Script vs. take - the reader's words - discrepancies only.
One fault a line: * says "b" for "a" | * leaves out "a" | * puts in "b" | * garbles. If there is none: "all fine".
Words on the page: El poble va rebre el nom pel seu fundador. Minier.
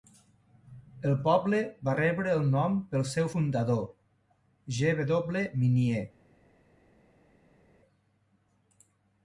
* puts in "G W"